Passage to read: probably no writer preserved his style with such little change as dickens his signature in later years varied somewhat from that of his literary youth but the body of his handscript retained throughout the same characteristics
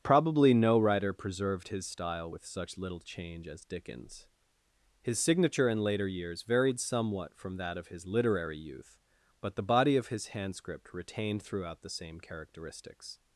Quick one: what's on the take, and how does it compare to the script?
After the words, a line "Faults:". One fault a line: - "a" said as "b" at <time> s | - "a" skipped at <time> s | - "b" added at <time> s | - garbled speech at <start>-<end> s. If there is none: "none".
probably no writer preserved his style with such little change as dickens his signature in later years varied somewhat from that of his literary youth but the body of his handscript retained throughout the same characteristics
Faults:
none